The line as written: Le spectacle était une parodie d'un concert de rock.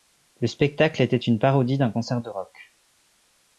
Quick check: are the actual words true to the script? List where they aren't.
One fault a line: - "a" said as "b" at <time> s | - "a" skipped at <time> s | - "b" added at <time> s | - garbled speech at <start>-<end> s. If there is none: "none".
none